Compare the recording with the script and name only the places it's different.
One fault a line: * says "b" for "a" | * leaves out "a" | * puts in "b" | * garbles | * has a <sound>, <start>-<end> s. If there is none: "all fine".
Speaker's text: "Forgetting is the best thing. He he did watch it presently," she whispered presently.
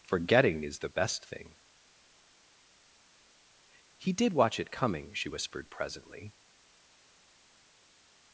* leaves out "he"
* says "coming" for "presently"